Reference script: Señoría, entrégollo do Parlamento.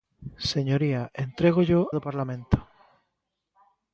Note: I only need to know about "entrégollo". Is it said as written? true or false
true